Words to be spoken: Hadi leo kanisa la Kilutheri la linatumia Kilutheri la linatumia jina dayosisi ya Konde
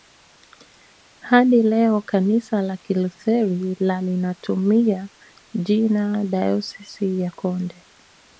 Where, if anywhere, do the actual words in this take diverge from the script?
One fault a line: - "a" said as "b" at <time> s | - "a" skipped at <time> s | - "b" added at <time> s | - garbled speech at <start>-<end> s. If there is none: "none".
- "Kilutheri la linatumia" skipped at 5.1 s